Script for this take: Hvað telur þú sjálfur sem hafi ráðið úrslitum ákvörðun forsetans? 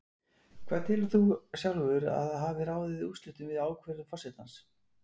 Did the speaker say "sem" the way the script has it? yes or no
no